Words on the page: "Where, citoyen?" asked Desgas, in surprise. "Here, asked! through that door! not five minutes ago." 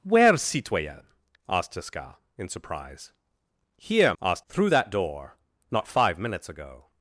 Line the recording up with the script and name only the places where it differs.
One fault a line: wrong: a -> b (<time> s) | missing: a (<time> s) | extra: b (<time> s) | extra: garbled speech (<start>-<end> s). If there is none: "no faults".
no faults